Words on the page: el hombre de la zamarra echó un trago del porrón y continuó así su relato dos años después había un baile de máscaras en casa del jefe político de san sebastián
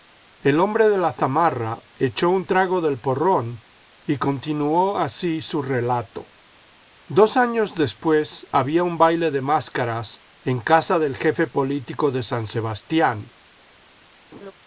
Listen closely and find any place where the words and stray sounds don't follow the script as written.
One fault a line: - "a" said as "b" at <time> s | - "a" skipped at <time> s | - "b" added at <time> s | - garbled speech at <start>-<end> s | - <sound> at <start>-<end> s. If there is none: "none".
- laugh at 14.3-14.5 s